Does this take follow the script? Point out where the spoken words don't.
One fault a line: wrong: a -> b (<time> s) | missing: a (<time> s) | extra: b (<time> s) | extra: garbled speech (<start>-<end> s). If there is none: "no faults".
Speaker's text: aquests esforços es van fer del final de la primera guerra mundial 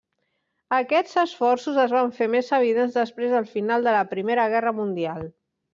extra: més evidents després (2.4 s)